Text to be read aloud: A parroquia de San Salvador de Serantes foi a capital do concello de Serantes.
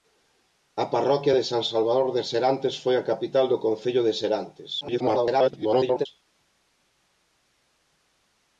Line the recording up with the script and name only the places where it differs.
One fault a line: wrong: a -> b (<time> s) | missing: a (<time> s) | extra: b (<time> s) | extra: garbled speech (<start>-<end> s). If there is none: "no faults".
extra: garbled speech (4.8-6.1 s)